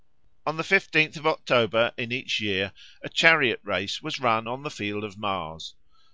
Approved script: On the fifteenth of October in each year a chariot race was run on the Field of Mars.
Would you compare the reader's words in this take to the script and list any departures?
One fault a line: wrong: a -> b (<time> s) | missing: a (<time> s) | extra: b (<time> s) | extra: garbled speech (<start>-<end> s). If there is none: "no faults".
no faults